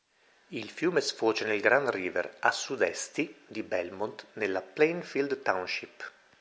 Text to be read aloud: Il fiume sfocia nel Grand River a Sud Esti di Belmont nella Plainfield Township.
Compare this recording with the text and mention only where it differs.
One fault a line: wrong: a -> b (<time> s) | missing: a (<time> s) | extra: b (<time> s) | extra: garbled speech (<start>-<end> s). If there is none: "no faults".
no faults